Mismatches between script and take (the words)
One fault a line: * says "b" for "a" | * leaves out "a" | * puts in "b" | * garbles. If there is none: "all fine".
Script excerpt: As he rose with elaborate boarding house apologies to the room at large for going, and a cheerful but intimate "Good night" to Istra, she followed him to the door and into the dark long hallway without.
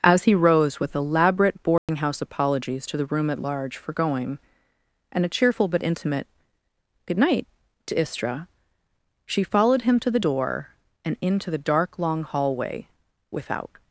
all fine